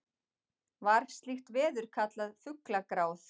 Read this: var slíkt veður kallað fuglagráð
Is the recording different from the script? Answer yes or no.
no